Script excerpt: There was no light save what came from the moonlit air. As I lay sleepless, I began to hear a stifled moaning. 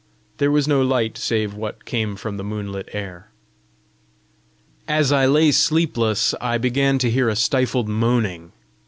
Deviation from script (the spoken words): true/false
false